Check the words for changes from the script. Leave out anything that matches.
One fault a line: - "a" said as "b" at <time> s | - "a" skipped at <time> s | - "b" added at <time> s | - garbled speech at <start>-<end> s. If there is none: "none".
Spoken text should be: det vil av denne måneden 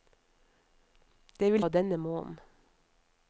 none